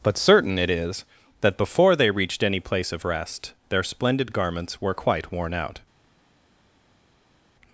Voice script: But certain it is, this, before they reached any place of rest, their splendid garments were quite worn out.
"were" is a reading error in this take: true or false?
false